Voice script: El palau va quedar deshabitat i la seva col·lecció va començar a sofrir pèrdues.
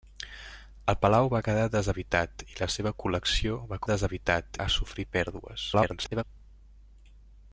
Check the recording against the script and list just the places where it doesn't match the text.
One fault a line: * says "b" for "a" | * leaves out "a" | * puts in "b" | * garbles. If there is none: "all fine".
* says "deshabitat" for "començar"
* garbles